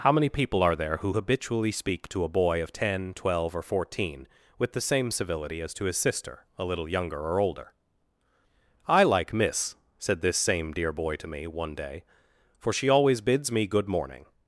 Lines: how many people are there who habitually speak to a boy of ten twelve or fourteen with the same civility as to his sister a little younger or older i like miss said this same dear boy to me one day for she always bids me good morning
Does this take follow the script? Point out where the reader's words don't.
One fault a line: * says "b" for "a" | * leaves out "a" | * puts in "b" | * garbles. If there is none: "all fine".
all fine